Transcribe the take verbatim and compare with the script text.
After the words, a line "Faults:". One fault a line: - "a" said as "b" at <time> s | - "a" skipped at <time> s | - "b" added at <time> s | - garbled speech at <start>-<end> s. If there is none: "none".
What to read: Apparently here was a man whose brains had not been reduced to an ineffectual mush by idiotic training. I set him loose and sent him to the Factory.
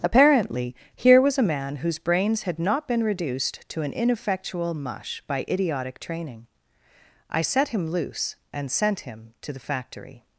Apparently here was a man whose brains had not been reduced to an ineffectual mush by idiotic training. I set him loose and sent him to the Factory.
Faults:
none